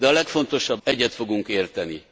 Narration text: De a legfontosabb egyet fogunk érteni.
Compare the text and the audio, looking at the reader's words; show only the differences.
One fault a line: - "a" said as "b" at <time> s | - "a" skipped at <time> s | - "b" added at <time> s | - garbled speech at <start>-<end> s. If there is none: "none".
none